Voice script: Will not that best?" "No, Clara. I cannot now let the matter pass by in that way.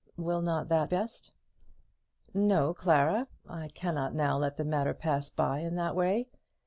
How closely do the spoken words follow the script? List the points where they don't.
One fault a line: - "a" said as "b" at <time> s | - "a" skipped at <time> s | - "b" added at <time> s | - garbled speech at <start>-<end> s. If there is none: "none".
none